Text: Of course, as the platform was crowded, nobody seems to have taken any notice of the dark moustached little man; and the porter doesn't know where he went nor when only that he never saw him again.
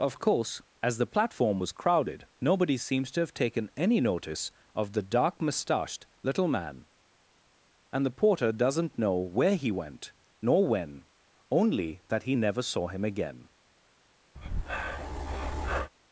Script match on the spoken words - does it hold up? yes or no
yes